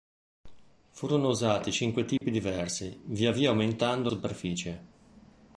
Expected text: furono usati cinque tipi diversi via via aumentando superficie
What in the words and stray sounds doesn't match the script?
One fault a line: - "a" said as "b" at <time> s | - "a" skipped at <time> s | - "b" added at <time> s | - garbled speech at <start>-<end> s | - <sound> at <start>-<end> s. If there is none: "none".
- dropout at 2.2-2.2 s